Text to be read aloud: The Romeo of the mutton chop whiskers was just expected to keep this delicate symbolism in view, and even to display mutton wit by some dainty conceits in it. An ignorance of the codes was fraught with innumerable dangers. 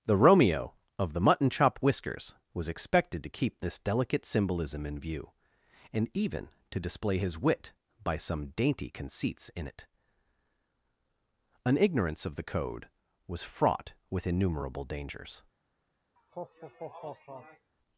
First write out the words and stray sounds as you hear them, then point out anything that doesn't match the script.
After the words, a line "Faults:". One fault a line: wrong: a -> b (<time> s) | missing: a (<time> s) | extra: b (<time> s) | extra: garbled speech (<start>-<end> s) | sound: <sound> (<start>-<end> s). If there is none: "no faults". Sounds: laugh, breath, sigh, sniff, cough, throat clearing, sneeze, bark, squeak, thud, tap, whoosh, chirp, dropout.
The Romeo of the mutton chop whiskers was expected to keep this delicate symbolism in view, and even to display his wit by some dainty conceits in it. An ignorance of the code was fraught with innumerable dangers.
Faults:
missing: just (2.7 s)
wrong: mutton -> his (7.2 s)
wrong: codes -> code (12.4 s)
sound: laugh (16.2-17.7 s)